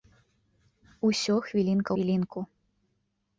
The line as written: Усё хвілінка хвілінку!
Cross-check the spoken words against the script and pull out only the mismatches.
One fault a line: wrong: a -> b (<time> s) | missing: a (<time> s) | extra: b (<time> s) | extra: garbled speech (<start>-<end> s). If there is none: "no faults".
no faults